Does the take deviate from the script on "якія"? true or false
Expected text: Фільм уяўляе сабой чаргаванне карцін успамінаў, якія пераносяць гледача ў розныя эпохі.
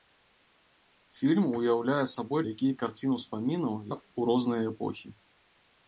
true